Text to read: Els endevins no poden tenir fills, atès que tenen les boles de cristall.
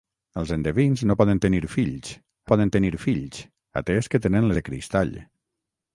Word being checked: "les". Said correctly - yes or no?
no